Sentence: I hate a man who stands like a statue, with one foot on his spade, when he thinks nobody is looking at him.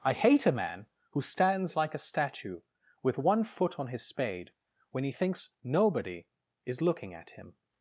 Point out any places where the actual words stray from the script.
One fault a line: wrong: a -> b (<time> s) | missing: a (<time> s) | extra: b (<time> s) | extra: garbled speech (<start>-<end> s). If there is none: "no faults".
no faults